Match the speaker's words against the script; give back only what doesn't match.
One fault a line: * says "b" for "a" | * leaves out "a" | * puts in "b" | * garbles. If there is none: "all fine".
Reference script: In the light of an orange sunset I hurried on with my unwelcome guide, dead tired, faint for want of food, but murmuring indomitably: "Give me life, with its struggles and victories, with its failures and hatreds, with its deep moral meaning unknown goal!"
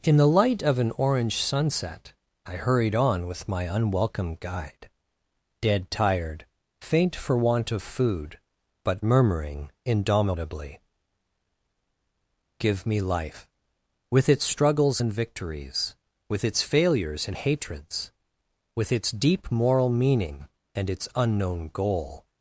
* puts in "and its"